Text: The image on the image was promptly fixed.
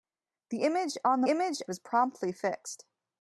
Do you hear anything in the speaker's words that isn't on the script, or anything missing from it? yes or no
no